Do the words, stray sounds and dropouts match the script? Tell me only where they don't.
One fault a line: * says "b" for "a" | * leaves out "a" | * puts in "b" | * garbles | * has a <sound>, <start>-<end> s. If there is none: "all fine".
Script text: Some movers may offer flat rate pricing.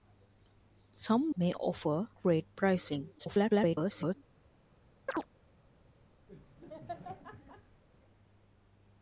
* leaves out "movers"
* leaves out "flat"
* garbles
* has a chirp, 5.1-5.3 s
* has a laugh, 6.3-7.8 s